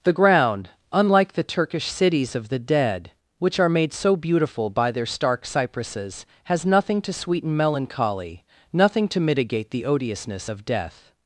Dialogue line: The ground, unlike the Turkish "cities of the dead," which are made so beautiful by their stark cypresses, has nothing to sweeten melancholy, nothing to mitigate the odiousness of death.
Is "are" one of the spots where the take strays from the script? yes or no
no